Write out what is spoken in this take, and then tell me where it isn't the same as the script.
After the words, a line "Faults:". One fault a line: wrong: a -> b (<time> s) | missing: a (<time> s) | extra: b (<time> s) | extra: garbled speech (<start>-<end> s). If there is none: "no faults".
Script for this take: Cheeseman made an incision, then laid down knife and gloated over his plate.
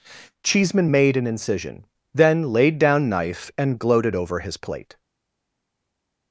Cheeseman made an incision, then laid down knife and gloated over his plate.
Faults:
no faults